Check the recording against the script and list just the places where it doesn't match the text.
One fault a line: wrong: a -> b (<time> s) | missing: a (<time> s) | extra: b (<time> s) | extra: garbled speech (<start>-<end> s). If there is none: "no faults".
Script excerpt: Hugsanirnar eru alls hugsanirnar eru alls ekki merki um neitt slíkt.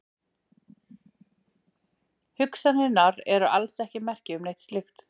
missing: hugsanirnar eru alls (3.8 s)